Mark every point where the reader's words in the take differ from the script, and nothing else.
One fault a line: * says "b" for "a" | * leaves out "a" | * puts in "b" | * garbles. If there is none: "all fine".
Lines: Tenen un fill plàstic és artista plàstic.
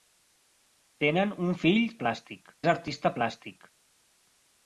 all fine